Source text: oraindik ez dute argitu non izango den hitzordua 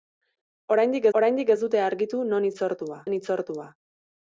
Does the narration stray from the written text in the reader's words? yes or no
yes